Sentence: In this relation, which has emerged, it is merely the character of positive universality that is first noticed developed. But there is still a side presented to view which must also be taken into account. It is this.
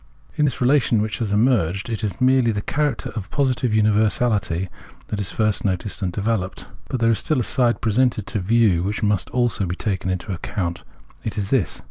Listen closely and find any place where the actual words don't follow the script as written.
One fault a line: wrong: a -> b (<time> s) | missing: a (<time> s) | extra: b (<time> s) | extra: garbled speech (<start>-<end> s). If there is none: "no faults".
extra: and (6.0 s)